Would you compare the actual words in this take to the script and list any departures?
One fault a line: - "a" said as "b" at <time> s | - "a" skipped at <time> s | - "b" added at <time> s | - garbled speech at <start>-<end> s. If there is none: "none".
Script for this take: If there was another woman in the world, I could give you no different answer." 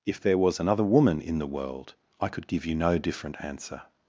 none